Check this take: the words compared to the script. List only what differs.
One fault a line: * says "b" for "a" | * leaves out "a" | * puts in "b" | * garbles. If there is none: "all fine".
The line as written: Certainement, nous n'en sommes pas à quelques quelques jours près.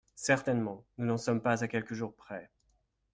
* leaves out "quelques"